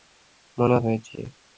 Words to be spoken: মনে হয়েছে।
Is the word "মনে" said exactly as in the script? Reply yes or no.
yes